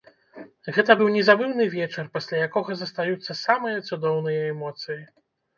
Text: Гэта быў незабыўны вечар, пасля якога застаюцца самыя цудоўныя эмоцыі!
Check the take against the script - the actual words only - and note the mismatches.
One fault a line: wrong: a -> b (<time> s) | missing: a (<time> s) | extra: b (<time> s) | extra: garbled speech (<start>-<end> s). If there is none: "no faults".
no faults